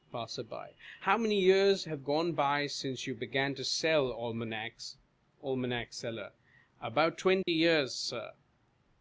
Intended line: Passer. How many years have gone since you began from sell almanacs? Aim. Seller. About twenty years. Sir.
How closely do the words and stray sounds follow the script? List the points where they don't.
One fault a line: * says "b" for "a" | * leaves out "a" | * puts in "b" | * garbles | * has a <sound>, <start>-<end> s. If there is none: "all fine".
* puts in "by"
* says "to" for "from"
* has a dropout, 7.4-7.5 s